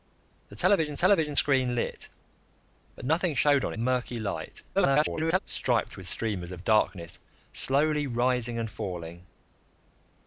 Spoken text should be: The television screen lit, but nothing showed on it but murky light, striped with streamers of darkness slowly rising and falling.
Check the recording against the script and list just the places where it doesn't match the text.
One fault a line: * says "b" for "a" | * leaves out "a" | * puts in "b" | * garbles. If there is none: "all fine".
* puts in "television"
* leaves out "it but"
* garbles